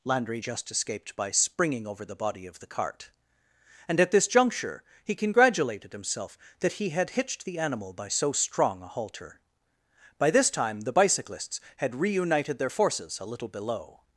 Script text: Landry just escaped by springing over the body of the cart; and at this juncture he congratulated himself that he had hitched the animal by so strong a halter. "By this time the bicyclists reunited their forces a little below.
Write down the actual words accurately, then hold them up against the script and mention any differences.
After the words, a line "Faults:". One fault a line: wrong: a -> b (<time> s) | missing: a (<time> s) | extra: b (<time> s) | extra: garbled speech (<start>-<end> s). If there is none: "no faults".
Landry just escaped by springing over the body of the cart; and at this juncture he congratulated himself that he had hitched the animal by so strong a halter. "By this time the bicyclists had reunited their forces a little below.
Faults:
extra: had (11.8 s)